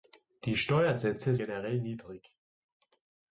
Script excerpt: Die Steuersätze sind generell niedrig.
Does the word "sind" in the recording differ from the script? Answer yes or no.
yes